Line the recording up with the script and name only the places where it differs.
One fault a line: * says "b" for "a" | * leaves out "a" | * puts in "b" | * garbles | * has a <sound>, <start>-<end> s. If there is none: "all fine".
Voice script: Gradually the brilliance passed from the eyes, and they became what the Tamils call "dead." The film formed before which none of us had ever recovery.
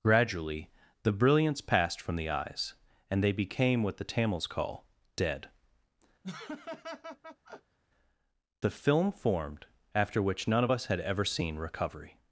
* has a laugh, 6.2-7.8 s
* says "after" for "before"
* puts in "seen"